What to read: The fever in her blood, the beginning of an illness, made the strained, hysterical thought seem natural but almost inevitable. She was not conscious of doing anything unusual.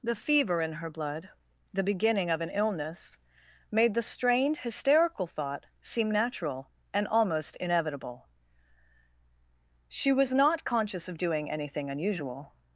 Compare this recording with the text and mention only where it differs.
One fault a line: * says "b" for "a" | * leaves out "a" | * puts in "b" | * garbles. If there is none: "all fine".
* says "and" for "but"